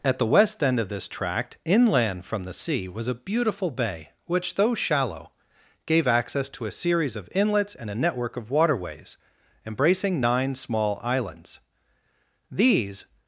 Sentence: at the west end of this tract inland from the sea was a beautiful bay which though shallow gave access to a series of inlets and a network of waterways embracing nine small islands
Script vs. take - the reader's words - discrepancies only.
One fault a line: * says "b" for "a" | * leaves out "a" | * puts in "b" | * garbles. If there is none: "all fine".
* puts in "these"